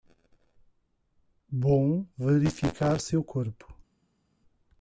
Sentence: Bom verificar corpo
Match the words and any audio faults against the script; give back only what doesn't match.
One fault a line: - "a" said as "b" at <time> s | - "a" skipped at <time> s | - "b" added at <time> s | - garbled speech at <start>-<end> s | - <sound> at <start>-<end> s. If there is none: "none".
- "seu" added at 3.0 s